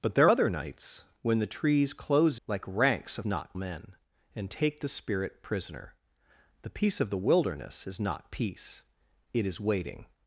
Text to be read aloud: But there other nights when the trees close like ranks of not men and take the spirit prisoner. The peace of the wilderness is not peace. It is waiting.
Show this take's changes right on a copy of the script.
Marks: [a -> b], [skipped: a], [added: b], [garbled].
But there other nights when the trees close like ranks of not men and take the spirit prisoner. The peace of the wilderness is not peace. It is waiting.